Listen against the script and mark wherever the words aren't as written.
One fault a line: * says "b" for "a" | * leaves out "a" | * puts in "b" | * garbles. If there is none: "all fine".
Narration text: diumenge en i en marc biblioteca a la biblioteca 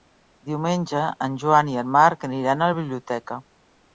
* puts in "joan"
* says "aniran" for "biblioteca"